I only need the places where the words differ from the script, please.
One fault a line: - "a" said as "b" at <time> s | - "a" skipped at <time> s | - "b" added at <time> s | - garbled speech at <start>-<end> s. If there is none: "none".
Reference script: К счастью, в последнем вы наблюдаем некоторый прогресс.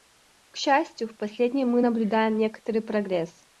- "вы" said as "мы" at 1.7 s